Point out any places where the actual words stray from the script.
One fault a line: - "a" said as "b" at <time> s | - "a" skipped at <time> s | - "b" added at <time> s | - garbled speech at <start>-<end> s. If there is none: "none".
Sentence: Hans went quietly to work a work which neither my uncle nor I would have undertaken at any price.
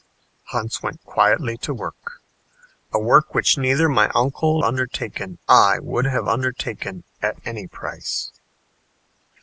- "nor" said as "undertaken" at 4.6 s